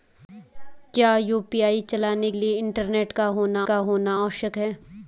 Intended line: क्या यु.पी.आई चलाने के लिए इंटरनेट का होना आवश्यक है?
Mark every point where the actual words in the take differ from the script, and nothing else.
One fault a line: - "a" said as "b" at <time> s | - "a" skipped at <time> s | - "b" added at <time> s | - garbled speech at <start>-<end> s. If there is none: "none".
- "के" skipped at 2.3 s
- "का होना" added at 3.6 s